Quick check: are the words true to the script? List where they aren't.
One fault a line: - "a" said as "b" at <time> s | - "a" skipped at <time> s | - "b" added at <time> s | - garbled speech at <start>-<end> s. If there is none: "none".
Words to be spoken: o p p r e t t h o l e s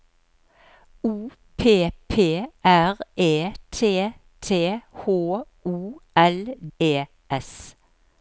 none